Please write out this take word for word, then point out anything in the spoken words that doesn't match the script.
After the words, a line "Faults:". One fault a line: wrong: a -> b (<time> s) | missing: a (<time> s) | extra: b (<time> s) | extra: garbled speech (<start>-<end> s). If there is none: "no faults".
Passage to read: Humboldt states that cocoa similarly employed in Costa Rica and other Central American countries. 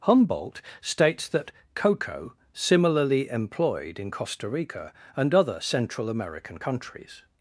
Humboldt states that cocoa similarly employed in Costa Rica and other Central American countries.
Faults:
no faults